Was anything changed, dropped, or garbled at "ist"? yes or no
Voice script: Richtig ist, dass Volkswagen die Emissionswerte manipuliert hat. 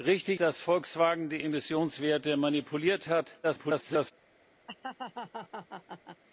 yes